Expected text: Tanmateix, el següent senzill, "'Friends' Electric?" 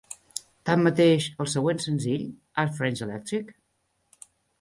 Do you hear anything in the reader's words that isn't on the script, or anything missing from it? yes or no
yes